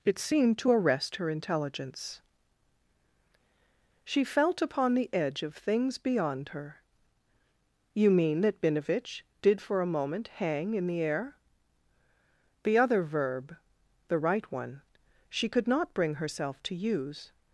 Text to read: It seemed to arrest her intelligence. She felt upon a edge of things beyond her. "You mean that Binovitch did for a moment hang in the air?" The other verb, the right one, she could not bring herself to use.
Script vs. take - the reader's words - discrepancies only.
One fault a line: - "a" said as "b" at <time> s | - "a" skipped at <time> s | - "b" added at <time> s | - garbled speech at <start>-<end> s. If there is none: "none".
- "a" said as "the" at 4.9 s